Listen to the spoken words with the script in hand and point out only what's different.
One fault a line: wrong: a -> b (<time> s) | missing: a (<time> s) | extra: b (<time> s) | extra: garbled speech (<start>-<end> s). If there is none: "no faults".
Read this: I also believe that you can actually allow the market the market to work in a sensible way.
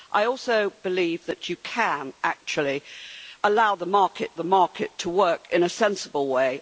no faults